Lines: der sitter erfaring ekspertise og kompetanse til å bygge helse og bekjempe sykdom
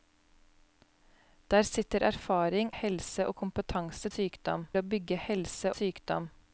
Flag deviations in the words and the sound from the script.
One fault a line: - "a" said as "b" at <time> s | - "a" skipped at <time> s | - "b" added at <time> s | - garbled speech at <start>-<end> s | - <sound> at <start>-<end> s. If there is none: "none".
- "ekspertise" said as "helse" at 2.7 s
- "til" said as "sykdom" at 4.1 s
- "og bekjempe" skipped at 5.7 s